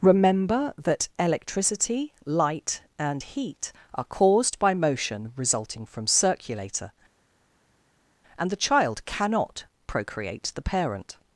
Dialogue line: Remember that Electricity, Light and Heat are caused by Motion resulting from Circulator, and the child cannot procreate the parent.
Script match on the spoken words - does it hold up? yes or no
yes